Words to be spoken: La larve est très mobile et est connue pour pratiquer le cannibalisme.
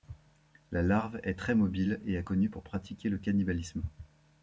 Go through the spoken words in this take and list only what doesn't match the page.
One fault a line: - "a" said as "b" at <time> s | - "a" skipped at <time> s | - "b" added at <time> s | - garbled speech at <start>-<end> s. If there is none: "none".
none